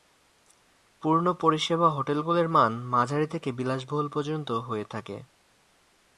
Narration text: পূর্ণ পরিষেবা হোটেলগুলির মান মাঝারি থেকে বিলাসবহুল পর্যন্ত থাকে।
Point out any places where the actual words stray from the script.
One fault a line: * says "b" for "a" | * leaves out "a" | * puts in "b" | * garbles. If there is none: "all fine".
* puts in "হয়ে"